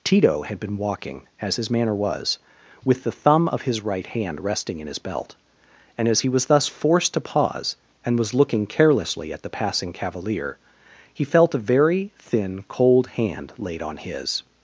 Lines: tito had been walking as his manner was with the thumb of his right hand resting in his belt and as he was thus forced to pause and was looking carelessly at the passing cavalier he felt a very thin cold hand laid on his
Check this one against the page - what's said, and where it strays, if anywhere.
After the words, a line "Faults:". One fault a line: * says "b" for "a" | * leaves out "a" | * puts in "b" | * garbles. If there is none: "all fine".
tito had been walking as his manner was with the thumb of his right hand resting in his belt and as he was thus forced to pause and was looking carelessly at the passing cavalier he felt a very thin cold hand laid on his
Faults:
all fine